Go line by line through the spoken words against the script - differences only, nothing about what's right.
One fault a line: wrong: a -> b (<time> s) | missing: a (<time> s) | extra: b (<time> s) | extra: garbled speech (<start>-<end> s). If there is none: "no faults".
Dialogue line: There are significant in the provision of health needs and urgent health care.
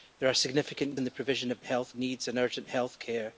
no faults